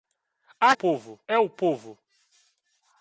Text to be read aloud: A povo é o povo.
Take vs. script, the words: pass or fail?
pass